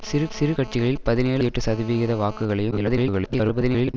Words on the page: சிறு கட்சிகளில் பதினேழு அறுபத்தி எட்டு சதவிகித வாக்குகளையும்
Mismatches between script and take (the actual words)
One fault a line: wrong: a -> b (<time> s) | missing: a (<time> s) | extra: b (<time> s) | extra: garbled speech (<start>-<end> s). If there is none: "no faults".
extra: சிறு (0.3 s)
missing: அறுபத்தி (1.4 s)
extra: garbled speech (2.7-3.9 s)